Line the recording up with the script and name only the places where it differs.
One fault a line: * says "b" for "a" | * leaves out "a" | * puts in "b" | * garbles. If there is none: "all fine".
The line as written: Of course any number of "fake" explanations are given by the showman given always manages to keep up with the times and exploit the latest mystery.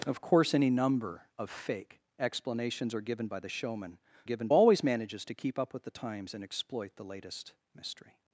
all fine